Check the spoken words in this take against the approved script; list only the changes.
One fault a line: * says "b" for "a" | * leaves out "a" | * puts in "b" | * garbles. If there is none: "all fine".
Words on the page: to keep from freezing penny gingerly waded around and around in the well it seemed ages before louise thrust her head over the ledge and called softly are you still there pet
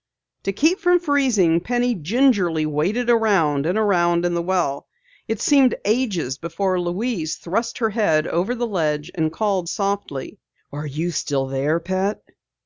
all fine